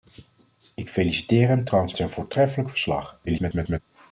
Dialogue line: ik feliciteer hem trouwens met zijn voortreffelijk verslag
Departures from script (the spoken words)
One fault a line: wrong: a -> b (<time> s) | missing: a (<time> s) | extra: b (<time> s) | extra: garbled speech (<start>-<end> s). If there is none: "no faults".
missing: met (1.9 s)
extra: garbled speech (3.3-3.8 s)